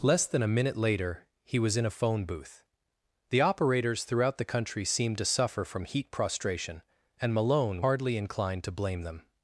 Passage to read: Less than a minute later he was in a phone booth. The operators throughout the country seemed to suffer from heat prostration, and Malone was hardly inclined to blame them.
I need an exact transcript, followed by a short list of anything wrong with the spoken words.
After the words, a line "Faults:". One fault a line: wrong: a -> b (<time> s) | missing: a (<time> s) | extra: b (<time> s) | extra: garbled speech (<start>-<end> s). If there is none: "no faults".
Less than a minute later he was in a phone booth. The operators throughout the country seemed to suffer from heat prostration, and Malone hardly inclined to blame them.
Faults:
missing: was (7.8 s)